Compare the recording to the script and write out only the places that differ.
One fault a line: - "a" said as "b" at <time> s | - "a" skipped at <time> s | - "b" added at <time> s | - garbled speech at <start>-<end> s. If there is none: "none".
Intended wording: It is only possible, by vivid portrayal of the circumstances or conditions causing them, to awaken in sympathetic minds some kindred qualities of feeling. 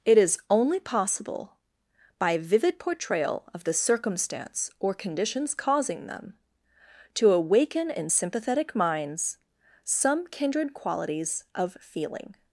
- "circumstances" said as "circumstance" at 3.7 s